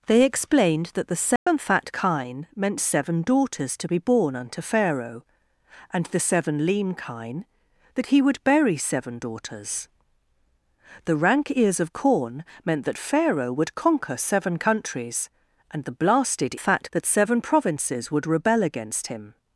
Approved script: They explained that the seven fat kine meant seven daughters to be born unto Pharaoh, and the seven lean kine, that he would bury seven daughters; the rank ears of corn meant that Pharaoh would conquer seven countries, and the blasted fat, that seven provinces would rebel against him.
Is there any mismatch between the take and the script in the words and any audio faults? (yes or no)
yes